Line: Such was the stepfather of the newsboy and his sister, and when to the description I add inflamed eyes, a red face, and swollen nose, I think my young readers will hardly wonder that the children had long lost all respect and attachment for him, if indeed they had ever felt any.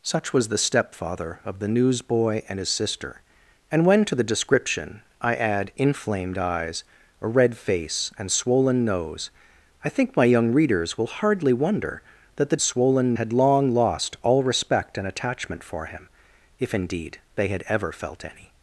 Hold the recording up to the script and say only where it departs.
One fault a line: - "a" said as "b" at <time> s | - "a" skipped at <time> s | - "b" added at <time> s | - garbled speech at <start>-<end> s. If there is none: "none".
- "children" said as "swollen" at 12.6 s